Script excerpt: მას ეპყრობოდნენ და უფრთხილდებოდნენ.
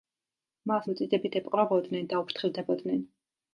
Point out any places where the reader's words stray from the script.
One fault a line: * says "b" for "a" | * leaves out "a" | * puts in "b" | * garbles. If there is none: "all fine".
* puts in "მოწიწებით"